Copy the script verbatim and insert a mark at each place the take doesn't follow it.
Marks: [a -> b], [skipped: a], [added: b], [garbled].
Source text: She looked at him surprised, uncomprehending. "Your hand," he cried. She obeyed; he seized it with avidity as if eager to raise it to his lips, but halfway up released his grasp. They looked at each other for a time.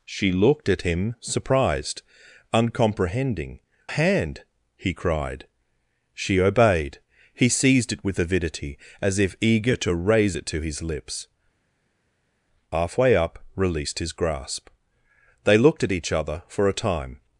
She looked at him surprised, uncomprehending. [skipped: "Your] hand," he cried. She obeyed; he seized it with avidity as if eager to raise it to his lips, [skipped: but] halfway up released his grasp. They looked at each other for a time.